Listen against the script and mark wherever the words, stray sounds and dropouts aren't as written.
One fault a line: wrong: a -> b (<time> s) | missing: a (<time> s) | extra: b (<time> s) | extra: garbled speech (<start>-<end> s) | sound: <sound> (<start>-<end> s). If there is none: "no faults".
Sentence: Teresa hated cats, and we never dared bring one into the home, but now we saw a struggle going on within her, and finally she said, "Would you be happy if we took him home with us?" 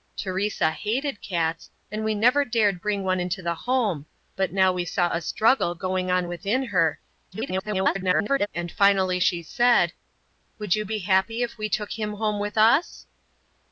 extra: garbled speech (7.3-8.5 s)